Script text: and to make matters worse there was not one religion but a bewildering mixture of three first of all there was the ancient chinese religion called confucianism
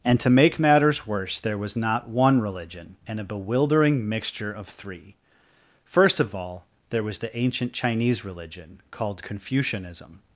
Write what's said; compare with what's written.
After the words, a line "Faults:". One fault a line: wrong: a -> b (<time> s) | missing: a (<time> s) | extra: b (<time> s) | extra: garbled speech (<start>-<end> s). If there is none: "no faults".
and to make matters worse there was not one religion and a bewildering mixture of three first of all there was the ancient chinese religion called confucianism
Faults:
wrong: but -> and (3.1 s)